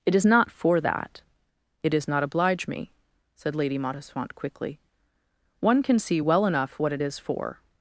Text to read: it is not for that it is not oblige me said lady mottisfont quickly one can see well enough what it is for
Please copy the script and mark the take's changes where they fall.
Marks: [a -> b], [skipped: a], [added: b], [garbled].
it is not for that it is not oblige me said lady mottisfont quickly one can see well enough what it is for